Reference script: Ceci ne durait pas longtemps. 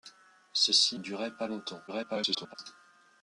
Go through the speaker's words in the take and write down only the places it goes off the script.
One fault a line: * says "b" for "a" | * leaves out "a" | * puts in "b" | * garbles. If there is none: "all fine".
* leaves out "ne"
* garbles